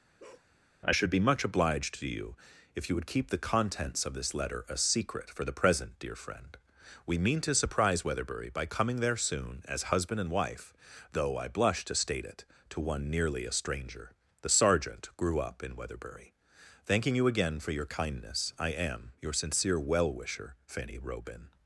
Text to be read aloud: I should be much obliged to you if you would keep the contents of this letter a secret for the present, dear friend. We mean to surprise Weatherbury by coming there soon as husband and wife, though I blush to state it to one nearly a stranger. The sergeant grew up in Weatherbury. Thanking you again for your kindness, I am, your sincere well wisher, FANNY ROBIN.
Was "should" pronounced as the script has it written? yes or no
yes